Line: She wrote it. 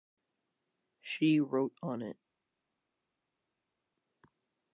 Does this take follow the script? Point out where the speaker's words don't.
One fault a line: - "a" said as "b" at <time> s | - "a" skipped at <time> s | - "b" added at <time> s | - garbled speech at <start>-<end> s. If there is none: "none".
- "on" added at 1.8 s